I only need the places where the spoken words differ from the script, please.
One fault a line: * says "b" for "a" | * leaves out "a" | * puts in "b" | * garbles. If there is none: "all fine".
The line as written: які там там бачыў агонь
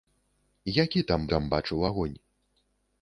all fine